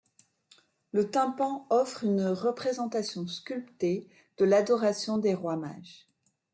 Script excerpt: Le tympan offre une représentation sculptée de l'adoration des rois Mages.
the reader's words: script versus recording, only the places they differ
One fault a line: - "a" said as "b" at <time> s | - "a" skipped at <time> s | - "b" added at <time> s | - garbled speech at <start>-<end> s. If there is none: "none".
none